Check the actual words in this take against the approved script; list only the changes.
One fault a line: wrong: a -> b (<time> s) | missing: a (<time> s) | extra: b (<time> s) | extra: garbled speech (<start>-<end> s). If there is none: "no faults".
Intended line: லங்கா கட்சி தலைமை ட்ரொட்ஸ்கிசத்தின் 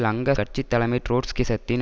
no faults